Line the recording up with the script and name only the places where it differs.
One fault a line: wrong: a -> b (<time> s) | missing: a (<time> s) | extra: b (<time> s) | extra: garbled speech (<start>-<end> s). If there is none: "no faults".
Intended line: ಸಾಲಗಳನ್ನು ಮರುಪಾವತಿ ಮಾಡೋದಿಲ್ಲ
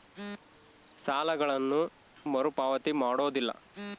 no faults